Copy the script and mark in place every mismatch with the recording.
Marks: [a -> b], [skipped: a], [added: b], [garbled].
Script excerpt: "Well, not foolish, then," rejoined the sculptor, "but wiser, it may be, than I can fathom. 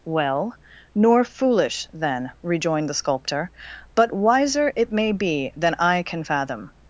"Well, [not -> nor] foolish, then," rejoined the sculptor, "but wiser, it may be, than I can fathom.